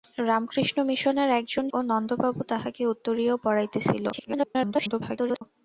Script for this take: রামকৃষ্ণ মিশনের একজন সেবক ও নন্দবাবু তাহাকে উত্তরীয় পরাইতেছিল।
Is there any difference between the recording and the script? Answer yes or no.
yes